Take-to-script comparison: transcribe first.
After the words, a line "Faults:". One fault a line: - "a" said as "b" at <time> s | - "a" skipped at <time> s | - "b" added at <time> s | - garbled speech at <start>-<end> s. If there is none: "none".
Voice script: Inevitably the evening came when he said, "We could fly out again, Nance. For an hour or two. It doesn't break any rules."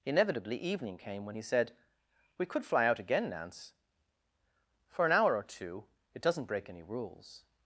Inevitably evening came when he said, "We could fly out again, Nance. For an hour or two. It doesn't break any rules."
Faults:
- "the" skipped at 0.6 s